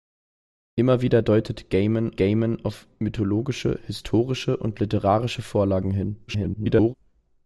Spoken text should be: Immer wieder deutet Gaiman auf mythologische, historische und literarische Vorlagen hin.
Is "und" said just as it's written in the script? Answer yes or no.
yes